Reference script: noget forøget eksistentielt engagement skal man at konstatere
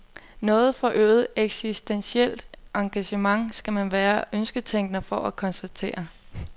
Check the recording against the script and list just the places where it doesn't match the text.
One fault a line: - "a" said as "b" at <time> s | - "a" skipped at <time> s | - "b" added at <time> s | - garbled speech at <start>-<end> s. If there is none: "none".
- "være ønsketænker for" added at 3.9 s